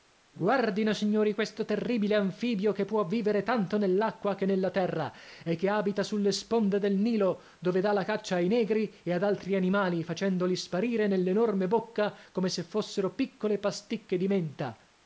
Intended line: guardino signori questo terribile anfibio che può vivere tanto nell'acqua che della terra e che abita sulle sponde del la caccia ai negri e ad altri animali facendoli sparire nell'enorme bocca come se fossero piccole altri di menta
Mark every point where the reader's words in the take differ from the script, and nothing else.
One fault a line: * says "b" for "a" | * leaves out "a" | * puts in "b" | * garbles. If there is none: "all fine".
* says "nella" for "della"
* puts in "nilo dove dà"
* says "pasticche" for "altri"